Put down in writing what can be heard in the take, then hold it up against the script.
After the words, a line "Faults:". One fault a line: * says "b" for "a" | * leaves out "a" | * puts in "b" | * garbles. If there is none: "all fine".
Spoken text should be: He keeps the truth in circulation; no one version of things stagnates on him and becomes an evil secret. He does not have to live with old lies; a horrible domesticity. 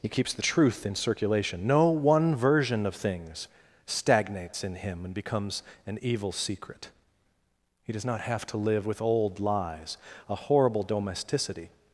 He keeps the truth in circulation; no one version of things stagnates in him and becomes an evil secret. He does not have to live with old lies; a horrible domesticity.
Faults:
* says "in" for "on"